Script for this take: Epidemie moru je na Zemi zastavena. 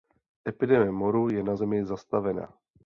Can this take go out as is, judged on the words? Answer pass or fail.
pass